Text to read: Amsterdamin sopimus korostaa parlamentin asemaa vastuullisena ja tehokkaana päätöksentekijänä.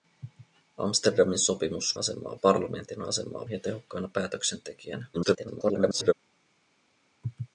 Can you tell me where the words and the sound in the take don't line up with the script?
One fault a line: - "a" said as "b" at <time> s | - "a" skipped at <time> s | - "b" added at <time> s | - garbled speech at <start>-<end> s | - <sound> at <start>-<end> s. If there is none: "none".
- "korostaa" said as "asemaa" at 1.9 s
- "vastuullisena" skipped at 3.5 s
- garbled speech at 5.1-6.1 s